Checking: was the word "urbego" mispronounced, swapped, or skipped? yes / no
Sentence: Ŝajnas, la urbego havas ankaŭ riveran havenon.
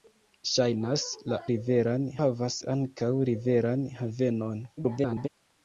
yes